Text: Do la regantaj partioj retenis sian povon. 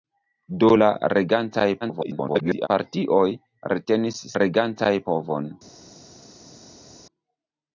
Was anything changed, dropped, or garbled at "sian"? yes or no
yes